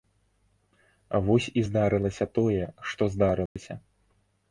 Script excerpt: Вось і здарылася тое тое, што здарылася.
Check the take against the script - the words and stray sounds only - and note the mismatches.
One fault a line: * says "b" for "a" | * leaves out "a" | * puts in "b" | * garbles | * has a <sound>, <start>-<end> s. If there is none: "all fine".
* leaves out "тое"
* has a dropout, 3.5-3.6 s